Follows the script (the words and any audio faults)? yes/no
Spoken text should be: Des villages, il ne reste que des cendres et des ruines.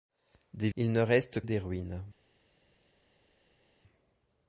no